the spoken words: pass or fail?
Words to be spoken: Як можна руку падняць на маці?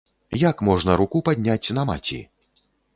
pass